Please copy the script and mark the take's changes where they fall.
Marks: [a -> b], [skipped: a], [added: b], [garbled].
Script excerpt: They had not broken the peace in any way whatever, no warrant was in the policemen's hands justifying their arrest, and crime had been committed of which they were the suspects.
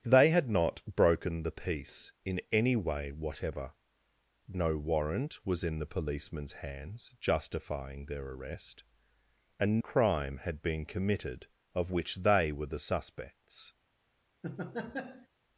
They had not broken the peace in any way whatever, no warrant was in the policemen's hands justifying their arrest, and crime had been committed of which they were the suspects.